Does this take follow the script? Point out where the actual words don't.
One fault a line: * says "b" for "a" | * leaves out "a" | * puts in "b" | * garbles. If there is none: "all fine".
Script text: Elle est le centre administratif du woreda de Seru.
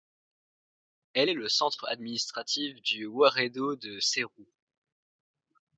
all fine